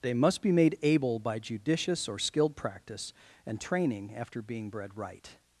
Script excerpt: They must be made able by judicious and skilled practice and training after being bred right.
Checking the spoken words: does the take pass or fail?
fail